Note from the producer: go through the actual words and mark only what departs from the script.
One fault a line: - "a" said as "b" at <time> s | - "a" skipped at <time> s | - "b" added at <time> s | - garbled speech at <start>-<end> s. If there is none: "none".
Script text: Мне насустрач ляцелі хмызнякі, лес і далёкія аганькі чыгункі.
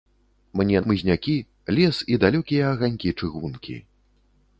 - "насустрач ляцелі" skipped at 0.8 s